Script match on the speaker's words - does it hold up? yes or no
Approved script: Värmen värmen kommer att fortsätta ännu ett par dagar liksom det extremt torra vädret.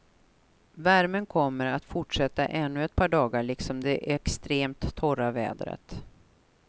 no